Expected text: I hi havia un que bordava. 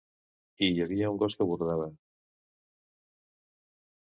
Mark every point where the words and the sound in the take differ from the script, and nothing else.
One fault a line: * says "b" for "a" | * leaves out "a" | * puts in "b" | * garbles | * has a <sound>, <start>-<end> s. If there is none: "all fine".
* puts in "gos"